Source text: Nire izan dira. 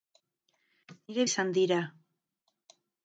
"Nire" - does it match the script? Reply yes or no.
yes